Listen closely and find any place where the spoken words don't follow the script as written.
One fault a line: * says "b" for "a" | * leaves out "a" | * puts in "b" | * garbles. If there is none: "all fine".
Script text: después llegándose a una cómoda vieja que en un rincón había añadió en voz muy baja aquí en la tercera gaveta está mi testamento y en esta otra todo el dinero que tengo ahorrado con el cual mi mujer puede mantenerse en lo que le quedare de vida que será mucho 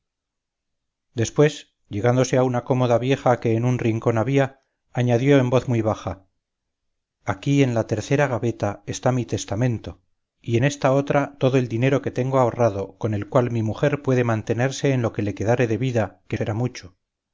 all fine